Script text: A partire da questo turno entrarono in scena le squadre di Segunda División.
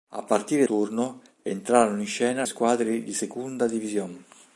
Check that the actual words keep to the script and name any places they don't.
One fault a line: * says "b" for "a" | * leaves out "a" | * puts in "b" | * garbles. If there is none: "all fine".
* leaves out "da questo"
* leaves out "le"